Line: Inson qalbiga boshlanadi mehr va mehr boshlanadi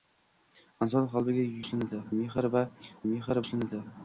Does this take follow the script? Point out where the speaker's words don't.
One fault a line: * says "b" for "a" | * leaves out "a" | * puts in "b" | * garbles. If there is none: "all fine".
all fine